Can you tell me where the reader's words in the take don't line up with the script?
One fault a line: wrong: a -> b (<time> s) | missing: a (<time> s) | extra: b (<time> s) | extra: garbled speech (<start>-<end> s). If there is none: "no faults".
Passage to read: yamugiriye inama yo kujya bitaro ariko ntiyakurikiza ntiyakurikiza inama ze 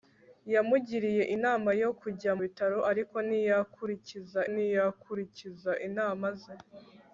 no faults